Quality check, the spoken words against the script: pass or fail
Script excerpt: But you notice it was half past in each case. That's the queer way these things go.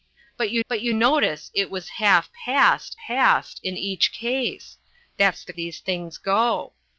fail